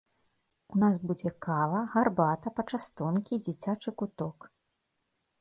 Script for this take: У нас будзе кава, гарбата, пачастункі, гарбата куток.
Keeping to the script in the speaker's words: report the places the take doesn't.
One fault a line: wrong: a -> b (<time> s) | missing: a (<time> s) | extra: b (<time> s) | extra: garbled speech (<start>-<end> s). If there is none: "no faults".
wrong: гарбата -> дзіцячы (3.5 s)